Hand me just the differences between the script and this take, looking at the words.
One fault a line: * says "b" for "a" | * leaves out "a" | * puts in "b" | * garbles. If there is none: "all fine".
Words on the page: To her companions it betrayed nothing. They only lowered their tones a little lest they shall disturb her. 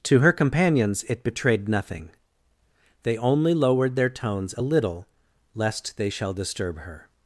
all fine